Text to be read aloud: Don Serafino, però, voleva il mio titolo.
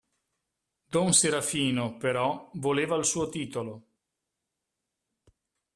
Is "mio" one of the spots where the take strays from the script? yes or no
yes